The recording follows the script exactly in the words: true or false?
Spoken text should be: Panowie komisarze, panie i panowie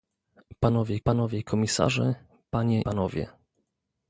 false